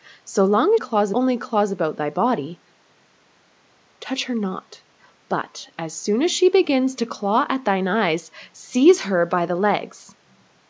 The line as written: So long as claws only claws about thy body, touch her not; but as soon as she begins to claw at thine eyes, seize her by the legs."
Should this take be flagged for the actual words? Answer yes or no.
no